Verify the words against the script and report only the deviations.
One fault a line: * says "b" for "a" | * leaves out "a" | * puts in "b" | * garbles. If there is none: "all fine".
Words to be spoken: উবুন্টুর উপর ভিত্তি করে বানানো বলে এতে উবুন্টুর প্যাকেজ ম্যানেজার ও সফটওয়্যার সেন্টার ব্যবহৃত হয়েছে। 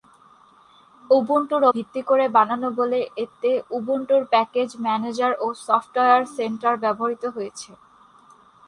* leaves out "উপর"